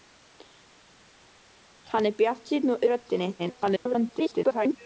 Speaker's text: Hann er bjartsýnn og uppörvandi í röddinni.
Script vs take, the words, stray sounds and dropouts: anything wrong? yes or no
yes